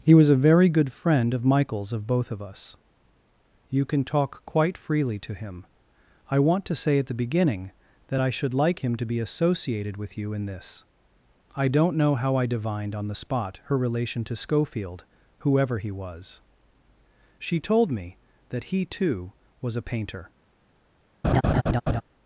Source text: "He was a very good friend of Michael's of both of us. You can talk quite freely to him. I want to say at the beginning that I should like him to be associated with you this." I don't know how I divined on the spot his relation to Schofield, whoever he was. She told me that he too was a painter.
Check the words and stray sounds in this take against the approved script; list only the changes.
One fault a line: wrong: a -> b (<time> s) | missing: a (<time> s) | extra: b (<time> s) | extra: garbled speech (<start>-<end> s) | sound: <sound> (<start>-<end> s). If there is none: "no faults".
extra: in (10.3 s)
wrong: his -> her (13.6 s)
sound: laugh (21.2-22.0 s)